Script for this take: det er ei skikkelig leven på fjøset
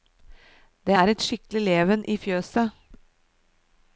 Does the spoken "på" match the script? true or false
false